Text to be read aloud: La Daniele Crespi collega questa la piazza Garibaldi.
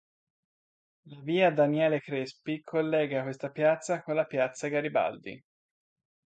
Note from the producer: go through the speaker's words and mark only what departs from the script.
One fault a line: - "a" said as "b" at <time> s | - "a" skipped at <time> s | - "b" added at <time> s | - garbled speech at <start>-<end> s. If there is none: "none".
- "via" added at 1.2 s
- "piazza con" added at 3.5 s